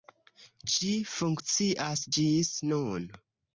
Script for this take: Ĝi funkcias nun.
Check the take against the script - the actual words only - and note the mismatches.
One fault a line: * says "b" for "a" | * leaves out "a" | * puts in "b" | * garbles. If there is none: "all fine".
* puts in "ĝis"